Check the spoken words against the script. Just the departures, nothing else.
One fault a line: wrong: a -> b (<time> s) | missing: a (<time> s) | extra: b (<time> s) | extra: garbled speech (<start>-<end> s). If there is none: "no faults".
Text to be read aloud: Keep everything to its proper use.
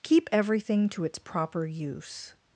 no faults